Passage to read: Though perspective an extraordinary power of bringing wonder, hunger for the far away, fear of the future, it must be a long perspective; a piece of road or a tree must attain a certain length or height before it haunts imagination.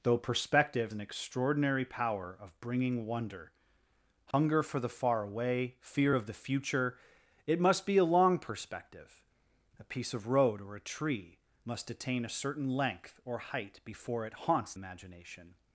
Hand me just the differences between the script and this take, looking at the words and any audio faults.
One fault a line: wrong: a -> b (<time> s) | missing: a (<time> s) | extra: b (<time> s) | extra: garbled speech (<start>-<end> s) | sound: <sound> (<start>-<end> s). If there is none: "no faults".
sound: dropout (4.3-4.3 s)